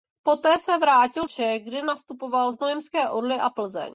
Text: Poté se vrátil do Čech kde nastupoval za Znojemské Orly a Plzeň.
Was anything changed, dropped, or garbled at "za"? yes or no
yes